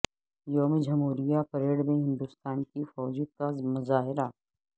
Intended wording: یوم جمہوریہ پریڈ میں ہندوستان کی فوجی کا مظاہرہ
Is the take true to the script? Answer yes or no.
yes